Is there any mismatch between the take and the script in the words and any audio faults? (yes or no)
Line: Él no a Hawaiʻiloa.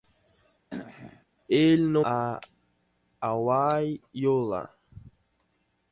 yes